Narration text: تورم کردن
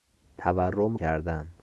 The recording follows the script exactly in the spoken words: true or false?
true